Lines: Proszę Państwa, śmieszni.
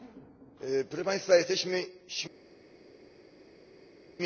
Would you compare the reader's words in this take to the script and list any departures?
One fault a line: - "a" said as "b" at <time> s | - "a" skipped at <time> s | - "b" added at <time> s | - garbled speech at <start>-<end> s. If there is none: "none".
- "jesteśmy" added at 1.4 s